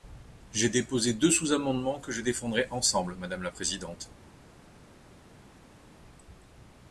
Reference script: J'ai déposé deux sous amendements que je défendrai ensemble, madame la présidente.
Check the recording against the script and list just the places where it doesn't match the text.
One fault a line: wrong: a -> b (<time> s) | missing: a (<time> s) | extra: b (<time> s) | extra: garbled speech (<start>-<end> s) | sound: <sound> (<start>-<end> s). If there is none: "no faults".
no faults